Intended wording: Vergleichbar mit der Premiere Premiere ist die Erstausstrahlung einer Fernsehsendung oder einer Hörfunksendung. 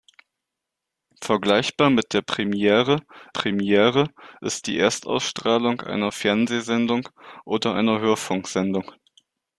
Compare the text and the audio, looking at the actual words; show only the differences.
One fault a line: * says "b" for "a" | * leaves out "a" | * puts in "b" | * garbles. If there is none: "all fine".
all fine